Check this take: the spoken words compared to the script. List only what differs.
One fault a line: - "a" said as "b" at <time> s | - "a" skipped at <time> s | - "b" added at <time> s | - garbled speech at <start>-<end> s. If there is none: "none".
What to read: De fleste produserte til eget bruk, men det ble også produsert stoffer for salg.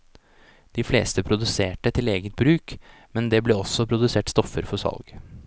none